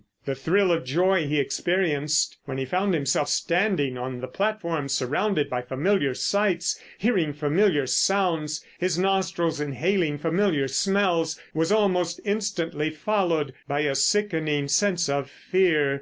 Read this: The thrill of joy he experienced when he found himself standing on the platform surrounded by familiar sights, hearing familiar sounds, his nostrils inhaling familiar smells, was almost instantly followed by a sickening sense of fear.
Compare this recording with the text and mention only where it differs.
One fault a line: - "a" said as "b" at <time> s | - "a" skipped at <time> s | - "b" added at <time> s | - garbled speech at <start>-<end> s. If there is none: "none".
none